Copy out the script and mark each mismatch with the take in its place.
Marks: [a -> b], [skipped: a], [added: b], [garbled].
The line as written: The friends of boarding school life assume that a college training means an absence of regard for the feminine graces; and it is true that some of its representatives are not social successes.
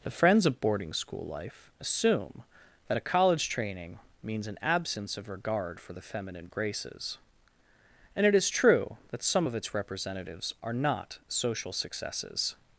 The friends of boarding school life assume that a college training means an absence of regard for the feminine graces; and it is true that some of its representatives are not social successes.